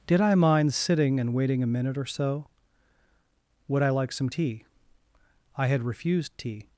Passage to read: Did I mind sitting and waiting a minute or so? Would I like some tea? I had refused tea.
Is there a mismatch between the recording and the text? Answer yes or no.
no